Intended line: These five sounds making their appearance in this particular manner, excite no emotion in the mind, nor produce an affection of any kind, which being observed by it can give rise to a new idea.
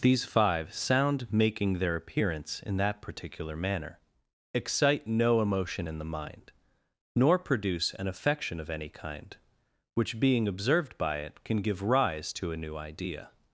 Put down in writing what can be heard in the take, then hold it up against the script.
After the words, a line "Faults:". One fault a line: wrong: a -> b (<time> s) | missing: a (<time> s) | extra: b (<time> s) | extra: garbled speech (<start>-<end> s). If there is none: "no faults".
These five sound making their appearance in that particular manner, excite no emotion in the mind, nor produce an affection of any kind, which being observed by it can give rise to a new idea.
Faults:
wrong: sounds -> sound (0.7 s)
wrong: this -> that (2.8 s)